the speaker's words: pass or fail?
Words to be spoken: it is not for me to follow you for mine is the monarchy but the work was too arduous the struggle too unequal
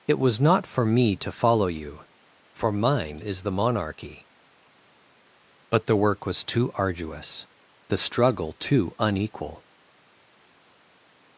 fail